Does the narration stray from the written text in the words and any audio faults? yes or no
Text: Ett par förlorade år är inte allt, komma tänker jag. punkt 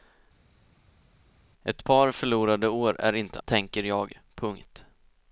yes